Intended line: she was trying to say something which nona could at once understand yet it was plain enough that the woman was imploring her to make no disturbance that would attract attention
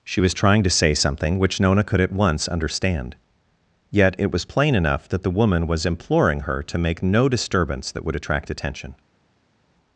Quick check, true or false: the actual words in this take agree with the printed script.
true